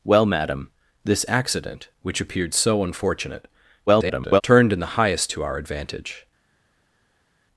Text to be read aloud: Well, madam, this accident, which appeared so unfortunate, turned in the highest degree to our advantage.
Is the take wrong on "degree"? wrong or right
wrong